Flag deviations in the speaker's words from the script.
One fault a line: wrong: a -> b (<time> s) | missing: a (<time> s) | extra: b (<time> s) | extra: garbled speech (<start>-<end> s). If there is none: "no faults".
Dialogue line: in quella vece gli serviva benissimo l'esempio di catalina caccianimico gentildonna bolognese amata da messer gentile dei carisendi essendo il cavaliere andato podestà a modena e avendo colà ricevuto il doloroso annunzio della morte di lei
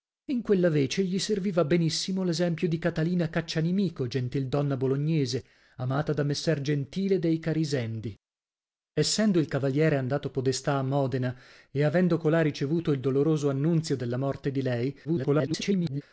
extra: garbled speech (15.0-16.0 s)